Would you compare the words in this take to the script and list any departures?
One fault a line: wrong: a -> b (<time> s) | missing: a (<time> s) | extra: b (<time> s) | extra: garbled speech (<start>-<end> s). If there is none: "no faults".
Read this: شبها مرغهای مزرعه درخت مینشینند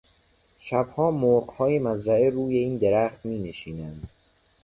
extra: روی این (2.3 s)